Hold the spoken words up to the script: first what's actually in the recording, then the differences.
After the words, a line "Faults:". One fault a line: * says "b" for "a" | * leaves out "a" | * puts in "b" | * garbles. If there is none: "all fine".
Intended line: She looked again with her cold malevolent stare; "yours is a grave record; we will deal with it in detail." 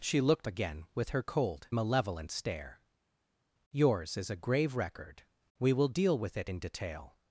She looked again with her cold malevolent stare; "yours is a grave record; we will deal with it in detail."
Faults:
all fine